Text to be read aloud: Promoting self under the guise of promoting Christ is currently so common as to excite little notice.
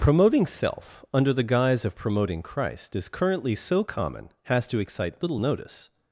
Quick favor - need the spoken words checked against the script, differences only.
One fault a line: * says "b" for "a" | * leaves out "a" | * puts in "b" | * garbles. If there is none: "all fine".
* says "has" for "as"